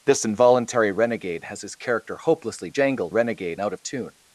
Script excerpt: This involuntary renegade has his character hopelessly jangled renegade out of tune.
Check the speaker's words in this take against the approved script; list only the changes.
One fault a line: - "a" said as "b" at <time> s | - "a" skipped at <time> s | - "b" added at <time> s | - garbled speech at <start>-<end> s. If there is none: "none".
none